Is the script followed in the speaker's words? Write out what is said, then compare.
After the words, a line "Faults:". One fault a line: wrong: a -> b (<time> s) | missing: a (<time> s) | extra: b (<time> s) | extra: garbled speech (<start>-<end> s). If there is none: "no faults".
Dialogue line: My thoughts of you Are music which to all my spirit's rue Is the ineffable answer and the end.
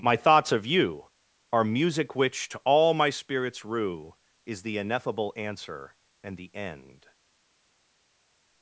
My thoughts of you Are music which to all my spirit's rue Is the ineffable answer and the end.
Faults:
no faults